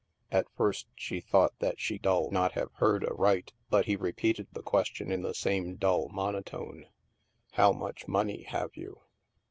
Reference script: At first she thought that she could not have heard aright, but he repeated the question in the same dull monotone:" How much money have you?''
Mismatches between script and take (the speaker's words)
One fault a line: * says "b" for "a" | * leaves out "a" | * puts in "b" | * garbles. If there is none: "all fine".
* says "dull" for "could"